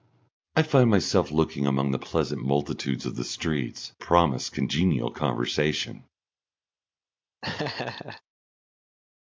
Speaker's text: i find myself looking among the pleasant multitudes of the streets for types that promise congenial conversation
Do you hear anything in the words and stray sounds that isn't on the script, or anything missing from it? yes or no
yes